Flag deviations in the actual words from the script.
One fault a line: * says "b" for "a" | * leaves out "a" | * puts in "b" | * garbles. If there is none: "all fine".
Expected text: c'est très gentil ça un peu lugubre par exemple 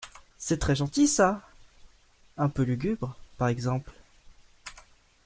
all fine